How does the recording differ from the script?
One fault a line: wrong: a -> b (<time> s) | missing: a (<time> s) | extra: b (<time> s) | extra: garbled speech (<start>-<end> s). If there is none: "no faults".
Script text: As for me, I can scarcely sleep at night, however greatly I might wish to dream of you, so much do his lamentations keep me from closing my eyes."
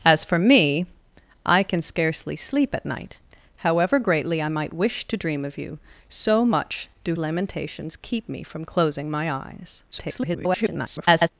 missing: his (7.1 s)
extra: garbled speech (9.9-11.3 s)